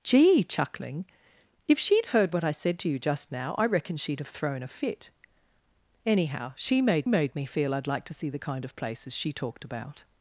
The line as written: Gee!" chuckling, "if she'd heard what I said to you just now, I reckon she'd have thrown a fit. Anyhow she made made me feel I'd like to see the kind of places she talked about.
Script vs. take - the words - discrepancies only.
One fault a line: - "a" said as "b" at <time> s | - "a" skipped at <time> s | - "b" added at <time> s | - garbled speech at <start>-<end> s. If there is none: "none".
none